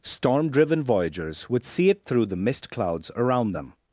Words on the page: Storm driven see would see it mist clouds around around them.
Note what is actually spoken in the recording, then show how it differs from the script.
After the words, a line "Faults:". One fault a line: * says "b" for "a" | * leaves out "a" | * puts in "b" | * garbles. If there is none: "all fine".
Storm driven voyagers would see it through the mist clouds around them.
Faults:
* says "voyagers" for "see"
* puts in "through the"
* leaves out "around"